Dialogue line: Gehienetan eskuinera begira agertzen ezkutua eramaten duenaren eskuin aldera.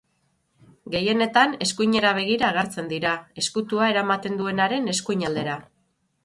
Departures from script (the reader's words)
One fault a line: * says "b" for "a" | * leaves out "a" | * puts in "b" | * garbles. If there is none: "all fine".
* puts in "dira"